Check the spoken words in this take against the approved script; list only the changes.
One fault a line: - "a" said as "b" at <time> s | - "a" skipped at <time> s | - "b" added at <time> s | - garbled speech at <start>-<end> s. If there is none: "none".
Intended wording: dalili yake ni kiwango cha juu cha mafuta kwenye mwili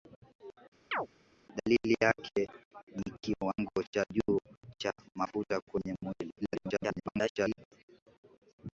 - garbled speech at 6.4-7.6 s